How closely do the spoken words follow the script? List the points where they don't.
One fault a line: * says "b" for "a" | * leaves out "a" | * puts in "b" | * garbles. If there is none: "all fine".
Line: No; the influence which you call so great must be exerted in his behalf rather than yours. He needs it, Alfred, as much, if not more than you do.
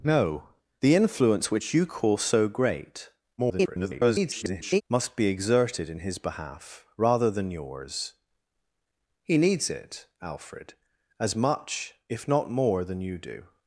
* garbles